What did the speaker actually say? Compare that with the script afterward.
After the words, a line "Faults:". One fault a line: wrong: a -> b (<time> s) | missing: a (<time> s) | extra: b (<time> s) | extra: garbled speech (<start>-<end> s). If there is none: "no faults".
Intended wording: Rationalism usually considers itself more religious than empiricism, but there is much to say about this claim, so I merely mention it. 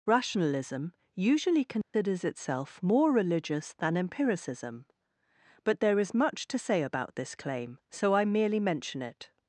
Rationalism usually considers itself more religious than empiricism, but there is much to say about this claim, so I merely mention it.
Faults:
no faults